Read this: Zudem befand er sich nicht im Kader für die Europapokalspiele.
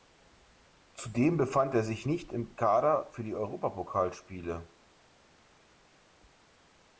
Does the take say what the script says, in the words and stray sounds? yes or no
yes